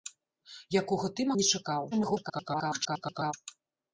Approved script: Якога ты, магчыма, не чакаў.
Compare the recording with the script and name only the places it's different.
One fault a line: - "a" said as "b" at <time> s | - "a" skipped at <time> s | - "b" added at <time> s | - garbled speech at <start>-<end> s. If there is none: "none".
- "магчыма" skipped at 1.3 s
- garbled speech at 1.9-3.3 s